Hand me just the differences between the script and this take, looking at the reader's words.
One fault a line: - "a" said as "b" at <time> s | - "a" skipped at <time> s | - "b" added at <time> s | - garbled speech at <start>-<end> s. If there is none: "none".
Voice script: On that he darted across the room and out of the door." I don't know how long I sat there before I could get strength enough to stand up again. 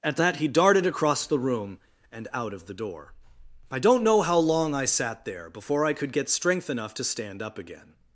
- "On" said as "At" at 0.0 s